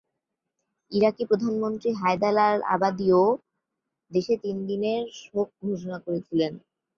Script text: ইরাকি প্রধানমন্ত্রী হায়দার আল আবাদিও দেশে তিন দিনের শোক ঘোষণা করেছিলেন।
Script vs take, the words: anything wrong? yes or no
no